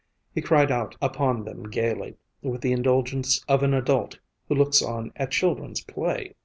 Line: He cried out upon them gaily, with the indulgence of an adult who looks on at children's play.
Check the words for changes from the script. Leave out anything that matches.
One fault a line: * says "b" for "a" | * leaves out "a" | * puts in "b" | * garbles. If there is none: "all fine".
all fine